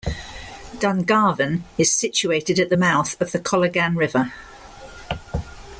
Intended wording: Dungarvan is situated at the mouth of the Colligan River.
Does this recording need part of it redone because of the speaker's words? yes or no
no